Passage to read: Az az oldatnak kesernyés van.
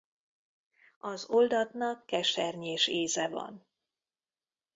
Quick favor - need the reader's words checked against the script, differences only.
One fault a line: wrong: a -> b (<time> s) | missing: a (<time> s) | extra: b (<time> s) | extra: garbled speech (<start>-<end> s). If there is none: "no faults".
missing: az (1.3 s)
extra: íze (2.9 s)